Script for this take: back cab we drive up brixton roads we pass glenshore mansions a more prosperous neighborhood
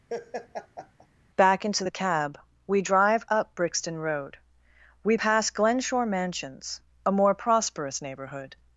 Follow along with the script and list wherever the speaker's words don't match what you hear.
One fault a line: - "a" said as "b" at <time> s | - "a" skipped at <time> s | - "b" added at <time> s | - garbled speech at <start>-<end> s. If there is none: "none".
- "into the" added at 1.6 s
- "roads" said as "road" at 4.0 s